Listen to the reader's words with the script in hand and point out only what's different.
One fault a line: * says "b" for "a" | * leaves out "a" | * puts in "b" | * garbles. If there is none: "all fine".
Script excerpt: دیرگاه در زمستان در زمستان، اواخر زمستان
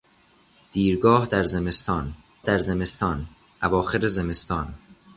all fine